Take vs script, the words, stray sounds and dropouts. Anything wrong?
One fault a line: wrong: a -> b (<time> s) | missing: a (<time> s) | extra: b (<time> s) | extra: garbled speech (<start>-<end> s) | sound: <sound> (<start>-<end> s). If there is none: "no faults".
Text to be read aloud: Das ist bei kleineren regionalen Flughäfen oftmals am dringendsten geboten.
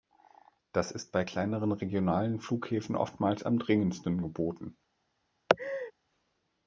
sound: laugh (5.5-5.9 s)